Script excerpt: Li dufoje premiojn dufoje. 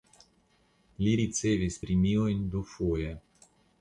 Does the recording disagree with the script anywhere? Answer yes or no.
yes